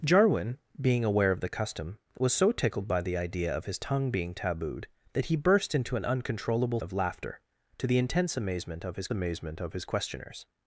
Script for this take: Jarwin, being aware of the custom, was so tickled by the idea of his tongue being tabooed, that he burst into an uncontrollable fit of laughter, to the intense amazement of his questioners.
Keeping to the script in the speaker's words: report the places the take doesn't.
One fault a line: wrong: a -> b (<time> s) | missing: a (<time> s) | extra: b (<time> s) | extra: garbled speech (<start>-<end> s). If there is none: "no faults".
missing: fit (6.8 s)
extra: amazement of his (9.1 s)